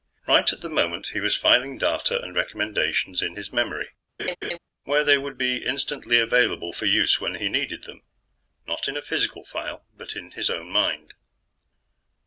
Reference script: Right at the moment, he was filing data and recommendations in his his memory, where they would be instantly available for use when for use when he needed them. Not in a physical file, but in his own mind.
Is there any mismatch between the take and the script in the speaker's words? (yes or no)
yes